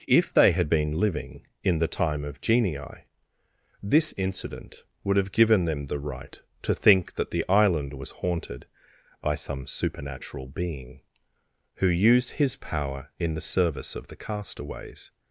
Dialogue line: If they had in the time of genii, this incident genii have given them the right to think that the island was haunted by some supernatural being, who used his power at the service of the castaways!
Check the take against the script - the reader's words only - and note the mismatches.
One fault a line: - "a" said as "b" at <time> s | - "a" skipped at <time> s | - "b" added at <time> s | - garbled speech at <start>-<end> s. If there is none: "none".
- "been living" added at 0.7 s
- "genii" said as "would" at 5.0 s
- "at" said as "in" at 13.2 s